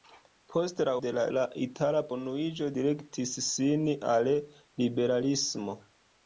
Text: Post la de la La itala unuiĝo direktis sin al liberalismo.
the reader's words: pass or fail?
pass